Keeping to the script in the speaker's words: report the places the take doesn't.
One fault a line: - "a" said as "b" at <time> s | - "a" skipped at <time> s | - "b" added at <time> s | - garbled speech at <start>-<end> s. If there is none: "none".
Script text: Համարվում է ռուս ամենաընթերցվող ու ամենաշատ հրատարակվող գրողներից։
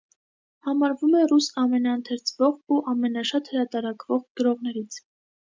none